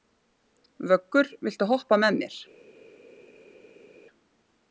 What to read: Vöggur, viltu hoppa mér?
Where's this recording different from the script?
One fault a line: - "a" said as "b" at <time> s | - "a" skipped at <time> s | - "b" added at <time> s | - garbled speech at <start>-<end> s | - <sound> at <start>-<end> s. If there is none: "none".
- "með" added at 2.0 s